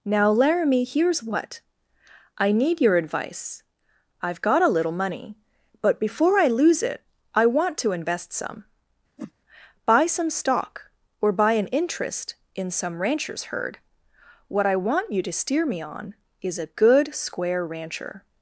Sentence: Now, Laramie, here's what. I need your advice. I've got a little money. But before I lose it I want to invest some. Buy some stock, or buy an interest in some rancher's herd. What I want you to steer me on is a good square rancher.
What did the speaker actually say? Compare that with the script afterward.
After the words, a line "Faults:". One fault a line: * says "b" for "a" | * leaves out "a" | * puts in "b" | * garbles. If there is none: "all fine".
Now, Laramie, here's what. I need your advice. I've got a little money. But before I lose it I want to invest some. Buy some stock, or buy an interest in some rancher's herd. What I want you to steer me on is a good square rancher.
Faults:
all fine